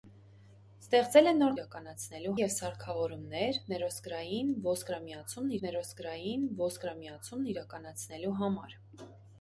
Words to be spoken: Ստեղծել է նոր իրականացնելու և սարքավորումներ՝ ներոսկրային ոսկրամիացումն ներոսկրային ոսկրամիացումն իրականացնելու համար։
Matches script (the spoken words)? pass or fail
pass